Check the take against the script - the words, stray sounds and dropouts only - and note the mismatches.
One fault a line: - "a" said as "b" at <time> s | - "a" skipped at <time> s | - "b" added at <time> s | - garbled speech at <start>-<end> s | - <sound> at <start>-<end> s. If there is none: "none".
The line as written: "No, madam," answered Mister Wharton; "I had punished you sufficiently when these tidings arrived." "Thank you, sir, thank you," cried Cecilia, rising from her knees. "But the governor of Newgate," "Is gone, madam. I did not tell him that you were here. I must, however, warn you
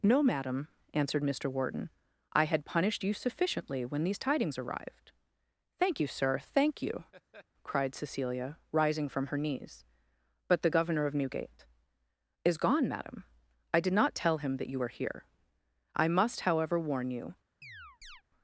- laugh at 7.1-7.5 s
- chirp at 17.6-18.2 s